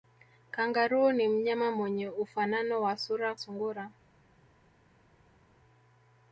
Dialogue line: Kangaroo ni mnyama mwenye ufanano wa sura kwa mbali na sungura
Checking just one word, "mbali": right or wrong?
wrong